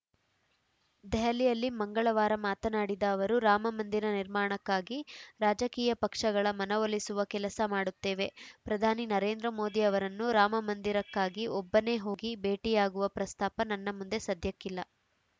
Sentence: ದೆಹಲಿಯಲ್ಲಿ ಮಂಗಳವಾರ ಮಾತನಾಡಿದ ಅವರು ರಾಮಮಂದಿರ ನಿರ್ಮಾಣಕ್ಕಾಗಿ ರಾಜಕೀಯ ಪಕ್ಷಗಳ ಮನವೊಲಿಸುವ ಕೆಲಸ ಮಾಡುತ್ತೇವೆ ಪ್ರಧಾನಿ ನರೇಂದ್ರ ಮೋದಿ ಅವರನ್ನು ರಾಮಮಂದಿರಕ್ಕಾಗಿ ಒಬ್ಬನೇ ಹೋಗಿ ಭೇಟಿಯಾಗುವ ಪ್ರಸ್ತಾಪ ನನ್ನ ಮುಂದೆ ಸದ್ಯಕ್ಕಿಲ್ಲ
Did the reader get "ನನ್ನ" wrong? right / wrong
right